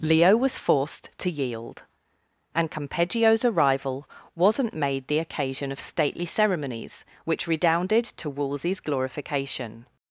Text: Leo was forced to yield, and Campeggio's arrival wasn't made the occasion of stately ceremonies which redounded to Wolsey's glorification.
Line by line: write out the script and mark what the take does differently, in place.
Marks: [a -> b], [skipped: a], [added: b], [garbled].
Leo was forced to yield, and Campeggio's arrival wasn't made the occasion of stately ceremonies which redounded to Wolsey's glorification.